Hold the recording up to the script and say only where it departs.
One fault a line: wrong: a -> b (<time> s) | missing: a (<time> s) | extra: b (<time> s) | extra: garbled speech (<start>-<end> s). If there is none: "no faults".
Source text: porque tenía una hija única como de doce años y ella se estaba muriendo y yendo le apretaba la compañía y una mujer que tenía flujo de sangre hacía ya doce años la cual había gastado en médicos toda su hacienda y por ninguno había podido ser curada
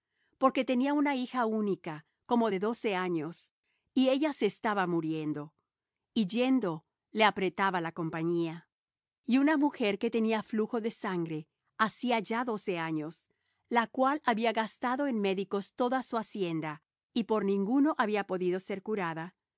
no faults